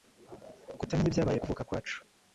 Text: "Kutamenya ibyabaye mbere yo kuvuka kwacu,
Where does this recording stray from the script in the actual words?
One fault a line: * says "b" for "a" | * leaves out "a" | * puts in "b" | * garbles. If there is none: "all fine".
* leaves out "mbere"